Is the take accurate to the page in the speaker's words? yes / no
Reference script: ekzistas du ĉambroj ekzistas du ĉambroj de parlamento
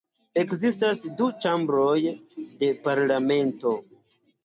no